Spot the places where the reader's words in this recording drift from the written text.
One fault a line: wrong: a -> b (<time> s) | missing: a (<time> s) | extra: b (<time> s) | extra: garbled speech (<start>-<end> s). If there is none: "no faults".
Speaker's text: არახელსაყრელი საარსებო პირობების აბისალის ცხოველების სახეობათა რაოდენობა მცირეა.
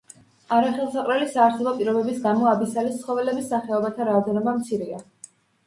extra: გამო (2.3 s)